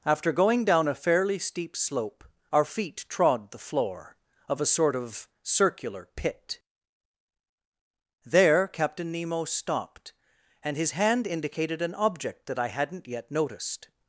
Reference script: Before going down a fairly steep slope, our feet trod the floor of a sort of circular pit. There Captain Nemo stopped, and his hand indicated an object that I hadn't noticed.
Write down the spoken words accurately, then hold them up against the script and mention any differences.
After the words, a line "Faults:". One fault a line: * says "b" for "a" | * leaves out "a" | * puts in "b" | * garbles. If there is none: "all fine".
After going down a fairly steep slope, our feet trod the floor of a sort of circular pit. There Captain Nemo stopped, and his hand indicated an object that I hadn't yet noticed.
Faults:
* says "After" for "Before"
* puts in "yet"